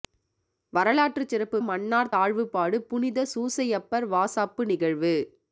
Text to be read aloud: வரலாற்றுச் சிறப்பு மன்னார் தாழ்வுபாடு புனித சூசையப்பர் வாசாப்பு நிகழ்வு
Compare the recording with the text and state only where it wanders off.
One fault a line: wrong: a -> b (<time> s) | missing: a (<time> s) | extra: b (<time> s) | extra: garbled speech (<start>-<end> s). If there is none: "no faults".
no faults